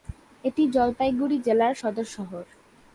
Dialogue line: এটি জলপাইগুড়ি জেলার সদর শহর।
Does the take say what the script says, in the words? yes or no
yes